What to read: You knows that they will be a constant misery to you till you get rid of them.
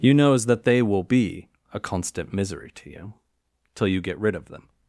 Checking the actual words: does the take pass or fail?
pass